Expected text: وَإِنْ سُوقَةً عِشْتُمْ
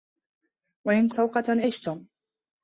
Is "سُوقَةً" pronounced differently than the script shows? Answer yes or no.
no